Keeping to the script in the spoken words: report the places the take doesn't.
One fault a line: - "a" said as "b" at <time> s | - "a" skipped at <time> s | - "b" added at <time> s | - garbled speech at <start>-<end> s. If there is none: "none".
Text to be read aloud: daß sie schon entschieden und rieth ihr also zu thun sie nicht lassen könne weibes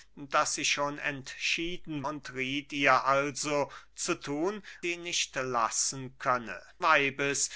none